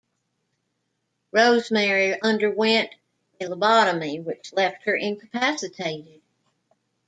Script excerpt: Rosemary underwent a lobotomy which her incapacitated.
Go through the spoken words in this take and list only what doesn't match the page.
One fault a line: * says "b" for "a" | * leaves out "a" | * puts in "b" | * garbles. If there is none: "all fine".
* puts in "left"